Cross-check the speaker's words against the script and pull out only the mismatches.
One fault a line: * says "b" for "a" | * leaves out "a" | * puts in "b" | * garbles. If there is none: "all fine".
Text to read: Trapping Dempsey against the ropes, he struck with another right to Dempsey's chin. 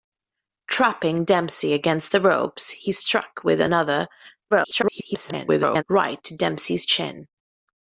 * garbles